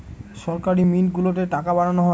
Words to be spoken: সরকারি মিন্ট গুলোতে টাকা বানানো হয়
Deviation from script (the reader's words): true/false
false